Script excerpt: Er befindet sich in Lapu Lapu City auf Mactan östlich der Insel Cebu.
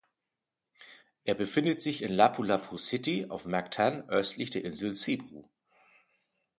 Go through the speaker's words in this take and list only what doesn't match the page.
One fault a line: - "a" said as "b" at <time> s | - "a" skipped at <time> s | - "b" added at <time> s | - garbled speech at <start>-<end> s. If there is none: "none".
none